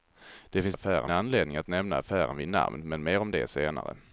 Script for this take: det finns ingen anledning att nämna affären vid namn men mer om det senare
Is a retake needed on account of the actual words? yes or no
yes